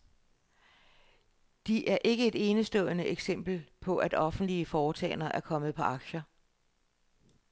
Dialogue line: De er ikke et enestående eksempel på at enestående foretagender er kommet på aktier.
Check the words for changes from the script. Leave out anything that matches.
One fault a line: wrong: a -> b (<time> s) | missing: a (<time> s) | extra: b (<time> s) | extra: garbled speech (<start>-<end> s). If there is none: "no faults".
wrong: enestående -> offentlige (4.1 s)